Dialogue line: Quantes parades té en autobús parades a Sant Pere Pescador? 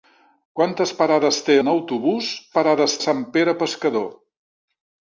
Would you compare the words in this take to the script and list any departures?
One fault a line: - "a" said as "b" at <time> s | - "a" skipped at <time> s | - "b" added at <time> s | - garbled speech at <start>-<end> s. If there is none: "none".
none